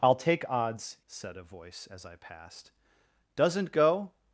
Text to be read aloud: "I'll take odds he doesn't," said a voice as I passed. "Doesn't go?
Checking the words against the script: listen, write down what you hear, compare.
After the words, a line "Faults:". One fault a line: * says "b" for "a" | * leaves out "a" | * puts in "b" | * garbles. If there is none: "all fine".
"I'll take odds," said a voice as I passed. "Doesn't go?
Faults:
* leaves out "he doesn't"